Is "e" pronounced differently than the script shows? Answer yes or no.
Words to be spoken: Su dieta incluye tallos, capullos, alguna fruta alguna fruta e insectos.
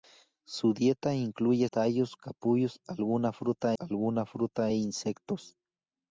no